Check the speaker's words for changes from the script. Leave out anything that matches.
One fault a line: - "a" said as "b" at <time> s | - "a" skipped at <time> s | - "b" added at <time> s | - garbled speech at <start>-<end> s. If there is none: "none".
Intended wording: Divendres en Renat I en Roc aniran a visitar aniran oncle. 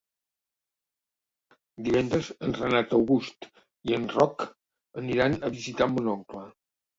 - "August" added at 3.0 s
- "aniran" said as "mon" at 6.0 s